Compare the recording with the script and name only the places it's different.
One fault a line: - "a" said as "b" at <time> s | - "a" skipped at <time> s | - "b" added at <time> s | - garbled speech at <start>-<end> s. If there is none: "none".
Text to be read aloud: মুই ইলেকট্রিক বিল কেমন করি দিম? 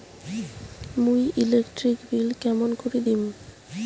none